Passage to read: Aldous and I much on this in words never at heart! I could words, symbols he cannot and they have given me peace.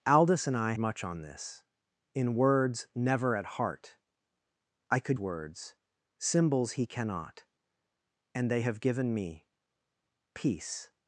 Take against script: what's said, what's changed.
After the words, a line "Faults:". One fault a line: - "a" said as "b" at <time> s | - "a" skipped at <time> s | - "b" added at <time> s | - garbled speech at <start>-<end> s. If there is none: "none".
Aldous and I much on this in words never at heart! I could words, symbols he cannot and they have given me peace.
Faults:
none